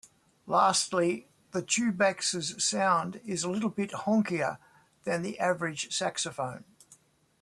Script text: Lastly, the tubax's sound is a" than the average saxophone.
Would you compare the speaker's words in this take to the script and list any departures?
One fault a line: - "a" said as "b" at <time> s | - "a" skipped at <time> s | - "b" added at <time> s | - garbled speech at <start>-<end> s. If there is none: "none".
- "little bit honkier" added at 3.5 s